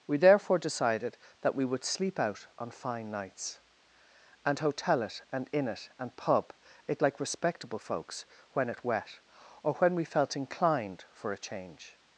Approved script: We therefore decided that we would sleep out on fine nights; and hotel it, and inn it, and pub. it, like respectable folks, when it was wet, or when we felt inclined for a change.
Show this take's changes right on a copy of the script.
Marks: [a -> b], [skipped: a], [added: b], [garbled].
We therefore decided that we would sleep out on fine nights; and hotel it, and inn it, and pub. it, like respectable folks, when it [skipped: was] wet, or when we felt inclined for a change.